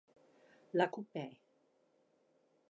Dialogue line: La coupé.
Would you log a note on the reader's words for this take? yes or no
no